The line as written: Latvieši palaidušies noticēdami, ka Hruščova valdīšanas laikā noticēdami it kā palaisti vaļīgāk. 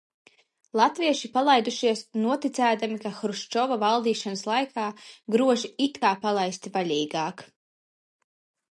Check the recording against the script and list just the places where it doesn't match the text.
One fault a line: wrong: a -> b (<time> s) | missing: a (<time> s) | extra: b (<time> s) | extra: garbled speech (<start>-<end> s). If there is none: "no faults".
wrong: noticēdami -> groži (5.4 s)